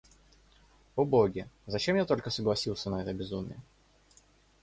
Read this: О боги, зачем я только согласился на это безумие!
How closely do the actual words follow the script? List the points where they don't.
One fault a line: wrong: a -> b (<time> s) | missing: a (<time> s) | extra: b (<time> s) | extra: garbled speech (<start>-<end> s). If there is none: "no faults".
no faults